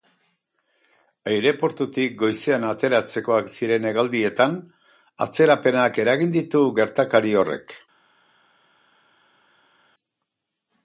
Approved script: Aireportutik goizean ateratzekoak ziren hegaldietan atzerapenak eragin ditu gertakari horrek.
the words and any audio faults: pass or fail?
pass